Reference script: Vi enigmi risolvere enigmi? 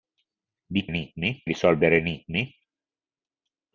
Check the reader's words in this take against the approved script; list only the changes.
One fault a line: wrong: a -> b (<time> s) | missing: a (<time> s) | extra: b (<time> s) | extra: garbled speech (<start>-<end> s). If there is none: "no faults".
no faults